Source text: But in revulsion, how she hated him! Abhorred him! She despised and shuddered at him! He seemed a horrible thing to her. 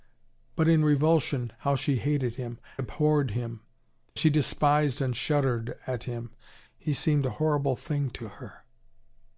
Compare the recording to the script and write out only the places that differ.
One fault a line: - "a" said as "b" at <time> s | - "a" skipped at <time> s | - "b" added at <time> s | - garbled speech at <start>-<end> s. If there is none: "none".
none